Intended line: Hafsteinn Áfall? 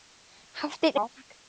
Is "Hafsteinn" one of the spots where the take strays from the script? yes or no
no